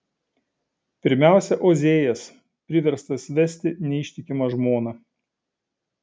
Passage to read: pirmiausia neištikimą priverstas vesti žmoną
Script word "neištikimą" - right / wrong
wrong